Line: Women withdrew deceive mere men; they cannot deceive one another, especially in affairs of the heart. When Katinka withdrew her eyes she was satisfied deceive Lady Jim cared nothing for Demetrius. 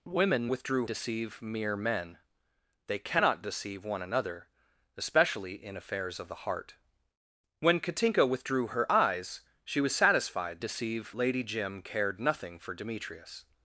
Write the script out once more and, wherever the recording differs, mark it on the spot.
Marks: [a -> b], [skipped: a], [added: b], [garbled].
Women withdrew deceive mere men; they cannot deceive one another, especially in affairs of the heart. When Katinka withdrew her eyes she was satisfied deceive Lady Jim cared nothing for Demetrius.